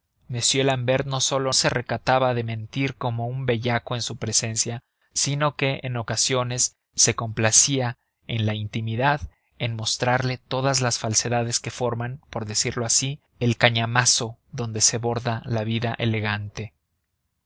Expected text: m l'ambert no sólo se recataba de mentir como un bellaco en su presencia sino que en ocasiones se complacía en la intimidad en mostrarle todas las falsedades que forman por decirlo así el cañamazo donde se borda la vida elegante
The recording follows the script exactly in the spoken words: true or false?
true